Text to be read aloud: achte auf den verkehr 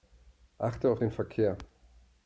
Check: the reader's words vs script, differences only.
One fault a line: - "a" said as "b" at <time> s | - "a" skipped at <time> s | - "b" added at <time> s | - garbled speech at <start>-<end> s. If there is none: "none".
none